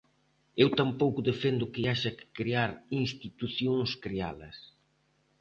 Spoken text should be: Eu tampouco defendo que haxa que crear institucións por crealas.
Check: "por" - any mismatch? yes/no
yes